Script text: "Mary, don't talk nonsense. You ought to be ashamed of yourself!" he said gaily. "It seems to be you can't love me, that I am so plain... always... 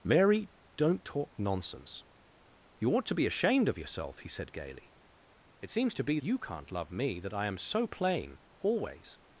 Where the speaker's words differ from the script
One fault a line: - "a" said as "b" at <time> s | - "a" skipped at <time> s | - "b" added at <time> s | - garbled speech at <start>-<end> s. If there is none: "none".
none